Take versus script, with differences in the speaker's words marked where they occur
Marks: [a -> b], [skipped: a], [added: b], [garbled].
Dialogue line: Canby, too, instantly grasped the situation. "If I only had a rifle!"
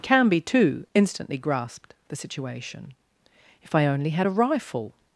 Canby, too, instantly grasped the situation. "If I only had a rifle!"